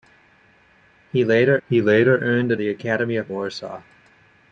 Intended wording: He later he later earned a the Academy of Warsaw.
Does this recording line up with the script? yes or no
yes